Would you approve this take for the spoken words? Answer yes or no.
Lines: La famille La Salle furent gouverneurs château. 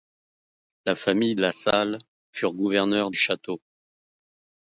yes